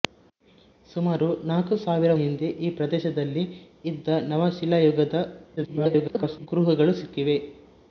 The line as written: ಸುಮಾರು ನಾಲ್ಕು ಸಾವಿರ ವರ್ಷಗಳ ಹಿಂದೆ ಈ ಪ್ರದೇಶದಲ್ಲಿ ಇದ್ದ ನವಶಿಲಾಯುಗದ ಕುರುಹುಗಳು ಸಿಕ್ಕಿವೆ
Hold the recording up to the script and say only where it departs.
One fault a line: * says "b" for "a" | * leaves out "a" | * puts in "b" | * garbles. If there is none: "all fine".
* leaves out "ವರ್ಷಗಳ"
* garbles